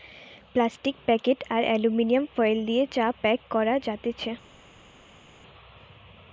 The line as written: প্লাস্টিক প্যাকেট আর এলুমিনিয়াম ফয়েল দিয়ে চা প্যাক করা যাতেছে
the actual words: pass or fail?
pass